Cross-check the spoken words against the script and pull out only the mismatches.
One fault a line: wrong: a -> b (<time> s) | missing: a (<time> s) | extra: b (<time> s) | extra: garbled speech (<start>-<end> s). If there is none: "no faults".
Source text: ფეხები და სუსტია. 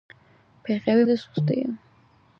no faults